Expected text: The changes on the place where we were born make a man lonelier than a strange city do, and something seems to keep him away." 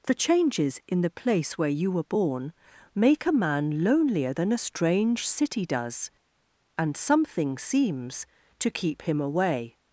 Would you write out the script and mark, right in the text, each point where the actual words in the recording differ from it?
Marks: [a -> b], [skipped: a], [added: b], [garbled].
The changes [on -> in] the place where [we -> you] were born make a man lonelier than a strange city [do, -> does] and something seems to keep him away."